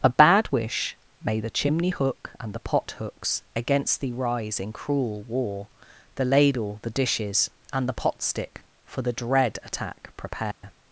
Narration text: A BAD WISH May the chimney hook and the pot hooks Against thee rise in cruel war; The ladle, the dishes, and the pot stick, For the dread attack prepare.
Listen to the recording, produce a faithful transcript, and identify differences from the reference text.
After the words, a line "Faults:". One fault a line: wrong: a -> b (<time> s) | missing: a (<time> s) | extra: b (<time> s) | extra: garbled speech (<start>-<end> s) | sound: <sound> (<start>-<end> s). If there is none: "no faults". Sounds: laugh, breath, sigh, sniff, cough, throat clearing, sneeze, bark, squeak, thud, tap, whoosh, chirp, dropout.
A BAD WISH May the chimney hook and the pot hooks Against thee rise in cruel war; The ladle, the dishes, and the pot stick, For the dread attack prepare.
Faults:
sound: dropout (10.5-10.6 s)